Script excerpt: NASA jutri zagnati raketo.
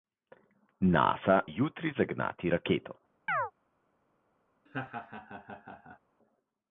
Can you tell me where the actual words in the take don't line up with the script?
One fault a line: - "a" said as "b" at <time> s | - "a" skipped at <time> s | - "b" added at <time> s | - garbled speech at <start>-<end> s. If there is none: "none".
none